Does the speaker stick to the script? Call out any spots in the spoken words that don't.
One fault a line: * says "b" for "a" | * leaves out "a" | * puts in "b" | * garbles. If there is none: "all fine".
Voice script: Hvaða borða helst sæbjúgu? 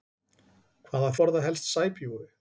all fine